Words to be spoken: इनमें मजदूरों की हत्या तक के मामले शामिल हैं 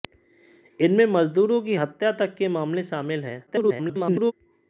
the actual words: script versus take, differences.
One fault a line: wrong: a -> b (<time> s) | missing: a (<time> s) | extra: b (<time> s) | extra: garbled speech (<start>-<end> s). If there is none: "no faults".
extra: garbled speech (3.5-4.3 s)